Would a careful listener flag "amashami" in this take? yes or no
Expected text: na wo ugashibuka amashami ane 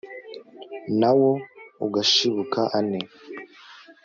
yes